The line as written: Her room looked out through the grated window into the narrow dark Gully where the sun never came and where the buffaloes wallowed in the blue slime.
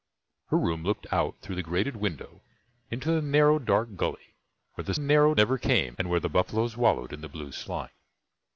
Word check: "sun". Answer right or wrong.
wrong